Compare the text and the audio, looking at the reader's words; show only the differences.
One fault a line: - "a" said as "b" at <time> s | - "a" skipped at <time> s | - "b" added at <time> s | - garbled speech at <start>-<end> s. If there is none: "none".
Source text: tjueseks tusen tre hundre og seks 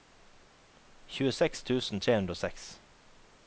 none